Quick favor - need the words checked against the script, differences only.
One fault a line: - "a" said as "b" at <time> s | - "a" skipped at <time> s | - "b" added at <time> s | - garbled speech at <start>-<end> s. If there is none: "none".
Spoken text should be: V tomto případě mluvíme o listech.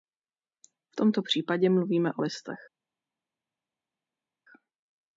none